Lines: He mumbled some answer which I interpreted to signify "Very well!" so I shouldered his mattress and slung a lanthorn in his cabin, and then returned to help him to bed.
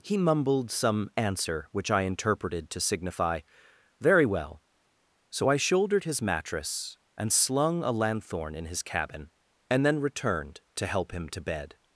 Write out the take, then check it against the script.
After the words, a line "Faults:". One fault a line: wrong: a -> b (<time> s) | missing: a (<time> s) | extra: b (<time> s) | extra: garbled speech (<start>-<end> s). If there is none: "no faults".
He mumbled some answer which I interpreted to signify "Very well!" so I shouldered his mattress and slung a lanthorn in his cabin, and then returned to help him to bed.
Faults:
no faults